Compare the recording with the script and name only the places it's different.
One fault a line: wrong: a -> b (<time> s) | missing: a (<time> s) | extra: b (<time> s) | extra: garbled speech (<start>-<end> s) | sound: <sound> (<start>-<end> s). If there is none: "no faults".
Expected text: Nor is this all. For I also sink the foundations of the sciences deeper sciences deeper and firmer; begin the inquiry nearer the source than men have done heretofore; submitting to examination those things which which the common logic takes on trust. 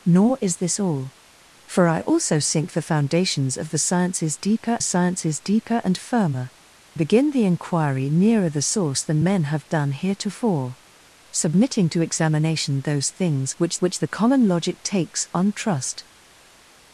no faults